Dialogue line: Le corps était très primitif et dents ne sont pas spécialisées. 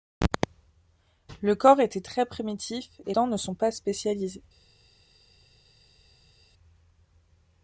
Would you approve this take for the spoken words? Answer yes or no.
yes